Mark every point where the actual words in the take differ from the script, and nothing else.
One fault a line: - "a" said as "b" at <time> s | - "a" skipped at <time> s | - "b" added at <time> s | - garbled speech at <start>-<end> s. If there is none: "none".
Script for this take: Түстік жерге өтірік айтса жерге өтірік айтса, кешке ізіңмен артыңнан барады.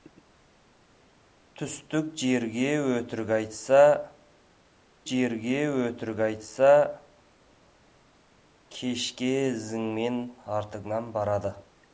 none